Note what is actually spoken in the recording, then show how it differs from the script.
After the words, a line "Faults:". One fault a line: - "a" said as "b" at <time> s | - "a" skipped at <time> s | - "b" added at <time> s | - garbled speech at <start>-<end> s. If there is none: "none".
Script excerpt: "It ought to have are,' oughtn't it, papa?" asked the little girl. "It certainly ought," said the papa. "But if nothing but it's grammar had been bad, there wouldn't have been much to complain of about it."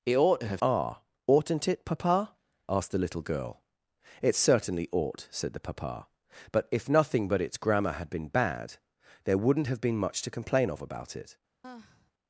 "It ought to have are,' oughtn't it, papa?" asked the little girl. "It certainly ought," said the papa. "But if nothing but it's grammar had been bad, there wouldn't have been much to complain of about it."
Faults:
none